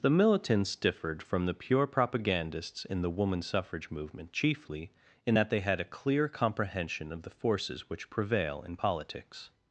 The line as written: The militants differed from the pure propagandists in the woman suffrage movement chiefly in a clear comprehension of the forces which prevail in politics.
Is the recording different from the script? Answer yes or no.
yes